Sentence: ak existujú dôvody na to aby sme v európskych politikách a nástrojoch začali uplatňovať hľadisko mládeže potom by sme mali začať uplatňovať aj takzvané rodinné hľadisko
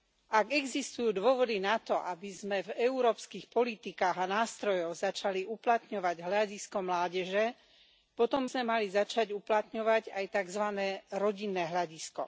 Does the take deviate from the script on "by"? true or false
true